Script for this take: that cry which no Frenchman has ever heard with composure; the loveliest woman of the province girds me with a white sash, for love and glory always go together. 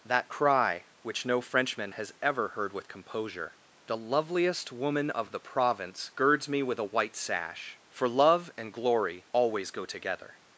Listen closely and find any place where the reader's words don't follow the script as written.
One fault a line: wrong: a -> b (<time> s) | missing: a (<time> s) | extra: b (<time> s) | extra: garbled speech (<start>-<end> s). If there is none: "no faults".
no faults